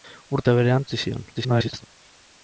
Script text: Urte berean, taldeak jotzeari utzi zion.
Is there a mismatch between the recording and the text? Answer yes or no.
yes